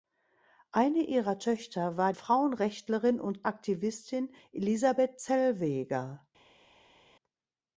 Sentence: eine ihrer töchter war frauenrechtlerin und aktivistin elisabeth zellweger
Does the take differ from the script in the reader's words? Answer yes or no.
no